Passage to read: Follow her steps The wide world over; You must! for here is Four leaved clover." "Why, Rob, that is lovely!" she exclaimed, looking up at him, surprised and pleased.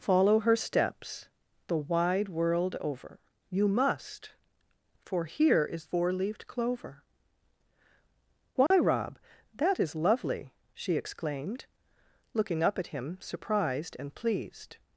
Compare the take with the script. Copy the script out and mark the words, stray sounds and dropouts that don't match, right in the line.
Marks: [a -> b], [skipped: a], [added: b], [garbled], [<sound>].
Follow her steps The wide world over; You must! for here is Four leaved clover." "Why, [dropout] Rob, that is lovely!" she exclaimed, looking up at him, surprised and pleased.